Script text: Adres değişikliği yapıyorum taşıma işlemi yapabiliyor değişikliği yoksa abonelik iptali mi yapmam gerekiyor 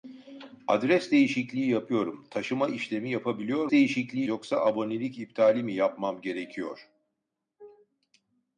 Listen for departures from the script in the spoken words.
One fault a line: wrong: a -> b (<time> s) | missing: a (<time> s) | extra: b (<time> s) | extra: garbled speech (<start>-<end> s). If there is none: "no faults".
no faults